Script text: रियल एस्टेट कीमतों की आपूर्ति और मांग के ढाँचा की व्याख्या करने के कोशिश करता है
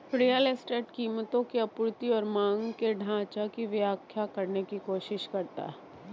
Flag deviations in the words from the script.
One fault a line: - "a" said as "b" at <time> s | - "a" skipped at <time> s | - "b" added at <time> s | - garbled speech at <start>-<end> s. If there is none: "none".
- "के" said as "की" at 4.6 s